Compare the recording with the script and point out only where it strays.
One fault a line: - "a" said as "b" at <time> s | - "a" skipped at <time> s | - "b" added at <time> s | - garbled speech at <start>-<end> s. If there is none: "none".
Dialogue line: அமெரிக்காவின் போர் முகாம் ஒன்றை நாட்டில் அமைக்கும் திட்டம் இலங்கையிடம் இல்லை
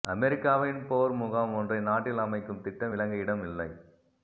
none